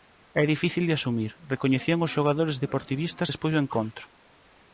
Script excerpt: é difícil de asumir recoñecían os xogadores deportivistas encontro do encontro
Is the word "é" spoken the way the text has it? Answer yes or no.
yes